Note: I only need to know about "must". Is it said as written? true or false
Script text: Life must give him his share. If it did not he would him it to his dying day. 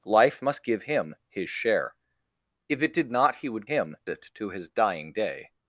true